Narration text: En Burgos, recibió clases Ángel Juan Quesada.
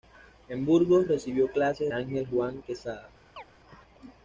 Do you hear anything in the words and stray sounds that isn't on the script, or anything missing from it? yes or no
yes